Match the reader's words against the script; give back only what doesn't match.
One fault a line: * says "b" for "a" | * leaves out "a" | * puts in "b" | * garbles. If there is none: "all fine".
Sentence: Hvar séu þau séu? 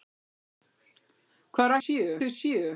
all fine